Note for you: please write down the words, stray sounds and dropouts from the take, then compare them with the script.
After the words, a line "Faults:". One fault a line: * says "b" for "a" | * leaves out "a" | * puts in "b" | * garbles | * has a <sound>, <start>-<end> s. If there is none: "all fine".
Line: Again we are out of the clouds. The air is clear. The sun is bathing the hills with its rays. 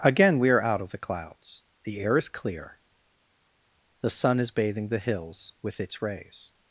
Again we are out of the clouds. The air is clear. The sun is bathing the hills with its rays.
Faults:
all fine